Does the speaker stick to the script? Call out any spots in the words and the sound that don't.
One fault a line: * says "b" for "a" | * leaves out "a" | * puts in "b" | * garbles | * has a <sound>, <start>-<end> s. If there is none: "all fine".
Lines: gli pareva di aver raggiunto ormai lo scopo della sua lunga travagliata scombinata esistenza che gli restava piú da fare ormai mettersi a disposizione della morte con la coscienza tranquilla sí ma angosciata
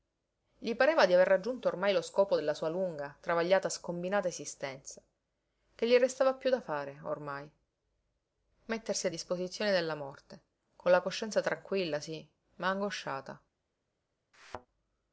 * has a thud, 14.3-14.7 s